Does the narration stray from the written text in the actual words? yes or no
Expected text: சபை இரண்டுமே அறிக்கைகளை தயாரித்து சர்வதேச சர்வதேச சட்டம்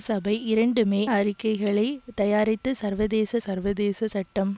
no